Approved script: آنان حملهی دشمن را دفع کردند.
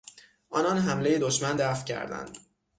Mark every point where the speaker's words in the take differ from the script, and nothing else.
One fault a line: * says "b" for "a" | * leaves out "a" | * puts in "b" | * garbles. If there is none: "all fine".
* leaves out "را"